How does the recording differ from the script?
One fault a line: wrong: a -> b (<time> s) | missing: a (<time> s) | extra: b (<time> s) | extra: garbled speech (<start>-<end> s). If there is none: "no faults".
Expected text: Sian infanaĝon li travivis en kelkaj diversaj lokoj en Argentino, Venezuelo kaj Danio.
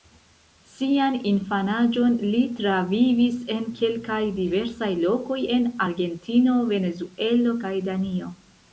no faults